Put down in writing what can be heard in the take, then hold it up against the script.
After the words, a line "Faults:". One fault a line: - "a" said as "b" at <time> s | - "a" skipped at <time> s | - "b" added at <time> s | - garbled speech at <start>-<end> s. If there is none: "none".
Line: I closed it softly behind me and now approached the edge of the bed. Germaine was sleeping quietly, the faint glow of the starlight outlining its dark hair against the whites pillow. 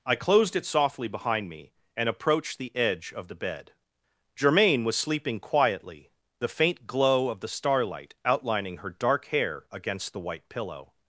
I closed it softly behind me and approached the edge of the bed. Germaine was sleeping quietly, the faint glow of the starlight outlining her dark hair against the white pillow.
Faults:
- "now" skipped at 2.1 s
- "its" said as "her" at 8.8 s
- "whites" said as "white" at 10.2 s